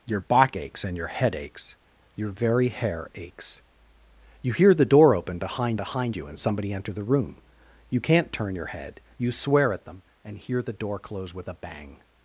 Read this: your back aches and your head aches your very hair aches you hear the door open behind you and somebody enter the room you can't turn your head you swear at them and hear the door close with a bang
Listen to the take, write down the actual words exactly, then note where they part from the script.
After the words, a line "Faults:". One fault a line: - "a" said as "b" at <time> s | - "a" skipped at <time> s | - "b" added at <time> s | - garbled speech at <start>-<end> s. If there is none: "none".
your back aches and your head aches your very hair aches you hear the door open behind behind you and somebody enter the room you can't turn your head you swear at them and hear the door close with a bang
Faults:
- "behind" added at 5.7 s